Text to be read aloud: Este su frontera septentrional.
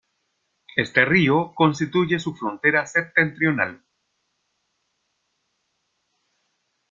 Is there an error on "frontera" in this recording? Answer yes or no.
no